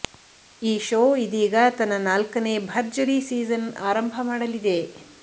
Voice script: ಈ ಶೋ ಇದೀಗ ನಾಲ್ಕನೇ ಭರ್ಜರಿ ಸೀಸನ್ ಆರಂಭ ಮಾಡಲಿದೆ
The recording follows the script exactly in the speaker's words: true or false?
false